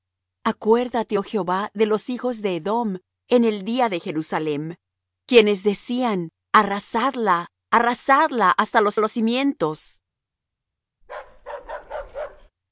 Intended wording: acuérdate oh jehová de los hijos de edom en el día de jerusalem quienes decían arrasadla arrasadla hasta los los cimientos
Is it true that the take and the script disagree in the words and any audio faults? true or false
true